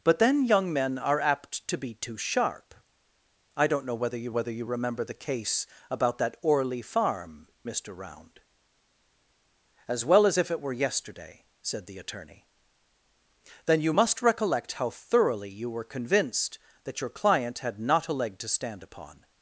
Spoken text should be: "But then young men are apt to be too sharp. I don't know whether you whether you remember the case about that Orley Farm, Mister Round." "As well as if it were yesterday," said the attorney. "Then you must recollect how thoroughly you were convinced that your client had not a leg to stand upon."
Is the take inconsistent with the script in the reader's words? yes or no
no